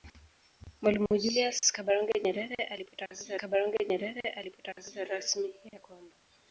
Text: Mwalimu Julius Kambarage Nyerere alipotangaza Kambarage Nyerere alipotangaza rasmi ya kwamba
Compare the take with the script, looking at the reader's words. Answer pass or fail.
pass